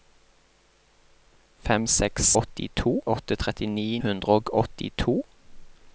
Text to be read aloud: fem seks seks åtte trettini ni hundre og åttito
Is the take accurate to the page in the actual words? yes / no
no